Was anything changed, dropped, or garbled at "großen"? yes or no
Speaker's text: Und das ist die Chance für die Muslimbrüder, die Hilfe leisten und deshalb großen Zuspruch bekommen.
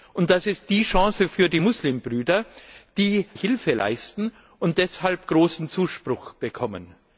no